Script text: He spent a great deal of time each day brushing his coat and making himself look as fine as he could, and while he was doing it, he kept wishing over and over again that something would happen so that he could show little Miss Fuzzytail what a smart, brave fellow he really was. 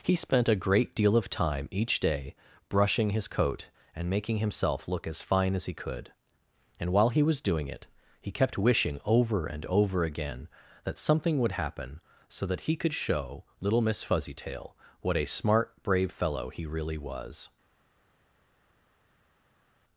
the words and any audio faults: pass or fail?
pass